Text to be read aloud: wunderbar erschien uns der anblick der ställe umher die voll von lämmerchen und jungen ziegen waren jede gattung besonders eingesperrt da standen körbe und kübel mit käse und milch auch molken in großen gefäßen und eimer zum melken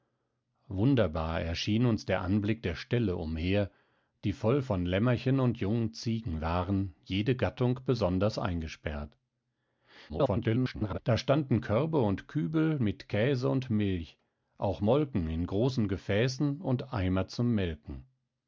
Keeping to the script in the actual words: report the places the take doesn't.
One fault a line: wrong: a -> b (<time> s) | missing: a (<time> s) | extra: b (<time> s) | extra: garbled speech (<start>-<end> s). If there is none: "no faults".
extra: garbled speech (10.1-11.0 s)